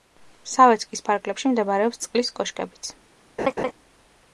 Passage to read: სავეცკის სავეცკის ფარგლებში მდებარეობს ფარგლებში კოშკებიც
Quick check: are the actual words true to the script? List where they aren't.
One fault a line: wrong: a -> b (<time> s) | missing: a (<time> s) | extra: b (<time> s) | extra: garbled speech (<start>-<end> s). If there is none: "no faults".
missing: სავეცკის (1.0 s)
wrong: ფარგლებში -> წყლის (2.1 s)